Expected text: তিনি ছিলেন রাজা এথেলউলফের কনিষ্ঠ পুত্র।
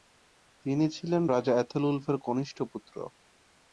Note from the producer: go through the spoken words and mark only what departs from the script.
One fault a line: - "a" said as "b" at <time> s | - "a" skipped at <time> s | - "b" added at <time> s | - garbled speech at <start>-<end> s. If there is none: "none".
none